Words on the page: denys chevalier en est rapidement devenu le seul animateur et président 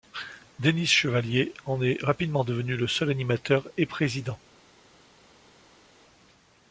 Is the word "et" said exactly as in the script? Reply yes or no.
yes